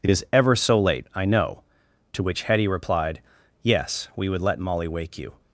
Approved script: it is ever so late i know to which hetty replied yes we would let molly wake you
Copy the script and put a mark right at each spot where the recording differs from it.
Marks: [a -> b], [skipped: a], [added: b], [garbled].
it is ever so late i know to which hetty replied yes we would let molly wake you